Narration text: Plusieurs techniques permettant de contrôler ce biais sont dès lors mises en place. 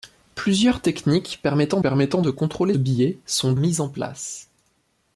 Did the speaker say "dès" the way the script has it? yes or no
no